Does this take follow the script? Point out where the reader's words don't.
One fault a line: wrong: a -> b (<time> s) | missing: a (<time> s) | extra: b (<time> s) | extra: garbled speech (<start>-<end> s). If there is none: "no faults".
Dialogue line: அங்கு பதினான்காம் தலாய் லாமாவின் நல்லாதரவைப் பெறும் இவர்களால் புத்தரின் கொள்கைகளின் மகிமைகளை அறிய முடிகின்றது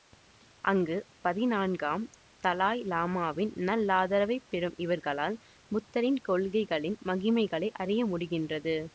no faults